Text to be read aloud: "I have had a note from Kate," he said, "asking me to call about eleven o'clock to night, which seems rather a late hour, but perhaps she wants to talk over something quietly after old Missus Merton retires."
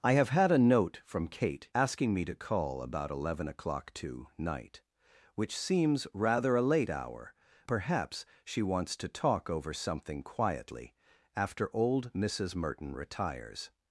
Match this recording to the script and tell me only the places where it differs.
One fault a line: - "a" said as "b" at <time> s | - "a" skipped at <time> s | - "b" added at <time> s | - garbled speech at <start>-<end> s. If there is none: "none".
- "he said" skipped at 1.7 s
- "but" skipped at 7.3 s